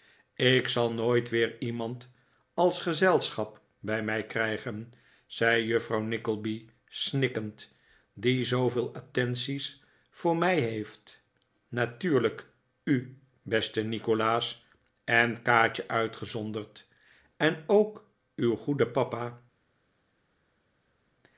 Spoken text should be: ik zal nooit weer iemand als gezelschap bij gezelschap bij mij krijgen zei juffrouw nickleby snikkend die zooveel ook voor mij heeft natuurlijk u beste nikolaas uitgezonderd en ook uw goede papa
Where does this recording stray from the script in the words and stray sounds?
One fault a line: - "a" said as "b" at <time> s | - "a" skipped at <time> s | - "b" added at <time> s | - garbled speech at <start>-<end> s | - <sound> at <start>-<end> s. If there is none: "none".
- "gezelschap bij" skipped at 4.0 s
- "ook" said as "attenties" at 8.9 s
- "en kaatje" added at 15.0 s